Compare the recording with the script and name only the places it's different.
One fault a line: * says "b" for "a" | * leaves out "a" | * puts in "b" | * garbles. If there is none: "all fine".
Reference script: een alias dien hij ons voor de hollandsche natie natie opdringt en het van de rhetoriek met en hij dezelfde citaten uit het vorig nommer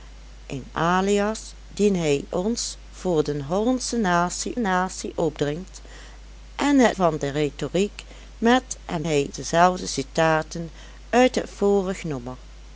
all fine